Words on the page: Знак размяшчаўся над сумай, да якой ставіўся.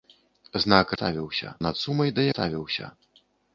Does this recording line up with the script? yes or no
no